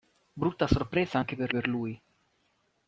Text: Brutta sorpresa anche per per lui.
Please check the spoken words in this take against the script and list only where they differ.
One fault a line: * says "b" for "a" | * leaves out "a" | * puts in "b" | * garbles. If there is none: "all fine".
all fine